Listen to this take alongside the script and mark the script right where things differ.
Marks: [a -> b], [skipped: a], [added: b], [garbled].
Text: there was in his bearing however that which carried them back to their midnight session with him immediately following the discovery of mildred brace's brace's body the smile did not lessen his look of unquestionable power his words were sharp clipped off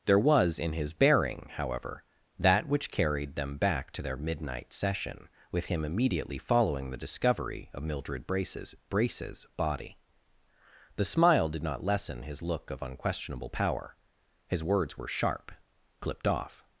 there was in his bearing however that which carried them back to their midnight session with him immediately following the discovery of mildred brace's brace's body the smile did not lessen his look of unquestionable power his words were sharp clipped off